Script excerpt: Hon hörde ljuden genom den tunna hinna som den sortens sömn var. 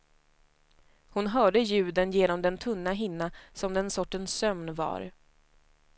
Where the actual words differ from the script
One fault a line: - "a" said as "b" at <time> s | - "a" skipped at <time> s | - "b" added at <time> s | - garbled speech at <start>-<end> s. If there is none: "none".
none